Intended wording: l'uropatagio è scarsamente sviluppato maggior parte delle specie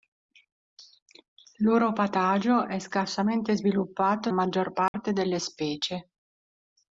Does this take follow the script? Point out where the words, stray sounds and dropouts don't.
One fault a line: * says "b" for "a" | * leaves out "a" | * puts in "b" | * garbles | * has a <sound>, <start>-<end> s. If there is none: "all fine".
* has a dropout, 4.9-4.9 s